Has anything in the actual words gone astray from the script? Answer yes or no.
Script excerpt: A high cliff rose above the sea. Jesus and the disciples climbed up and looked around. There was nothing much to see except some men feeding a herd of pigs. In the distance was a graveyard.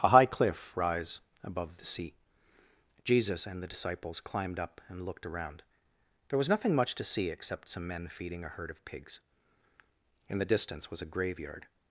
yes